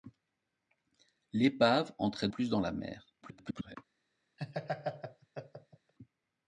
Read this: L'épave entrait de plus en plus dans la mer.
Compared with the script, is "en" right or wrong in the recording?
wrong